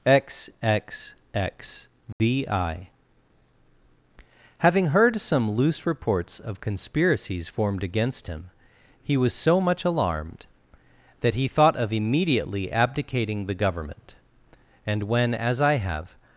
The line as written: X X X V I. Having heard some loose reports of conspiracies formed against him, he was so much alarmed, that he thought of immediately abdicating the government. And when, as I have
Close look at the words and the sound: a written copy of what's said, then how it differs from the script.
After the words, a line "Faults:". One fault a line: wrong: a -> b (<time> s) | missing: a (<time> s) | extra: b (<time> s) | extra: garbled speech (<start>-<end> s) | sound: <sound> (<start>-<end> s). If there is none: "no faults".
X X X V I. Having heard some loose reports of conspiracies formed against him, he was so much alarmed, that he thought of immediately abdicating the government. And when, as I have
Faults:
sound: dropout (2.1-2.2 s)